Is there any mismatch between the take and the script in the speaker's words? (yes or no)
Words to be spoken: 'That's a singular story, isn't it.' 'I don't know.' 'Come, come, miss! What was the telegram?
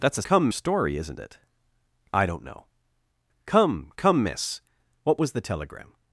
yes